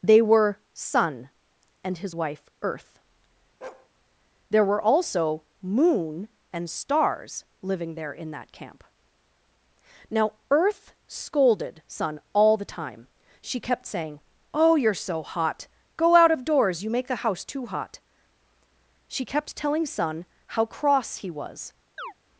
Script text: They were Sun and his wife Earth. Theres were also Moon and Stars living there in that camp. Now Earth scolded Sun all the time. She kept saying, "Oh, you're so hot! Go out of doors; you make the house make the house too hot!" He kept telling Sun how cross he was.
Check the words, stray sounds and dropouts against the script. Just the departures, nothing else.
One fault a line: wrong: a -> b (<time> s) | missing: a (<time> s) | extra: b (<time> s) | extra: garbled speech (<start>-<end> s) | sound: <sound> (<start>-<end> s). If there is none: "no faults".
sound: bark (3.6-3.9 s)
wrong: Theres -> There (4.5 s)
missing: make the house (17.4 s)
wrong: He -> She (19.1 s)
sound: chirp (22.0-22.1 s)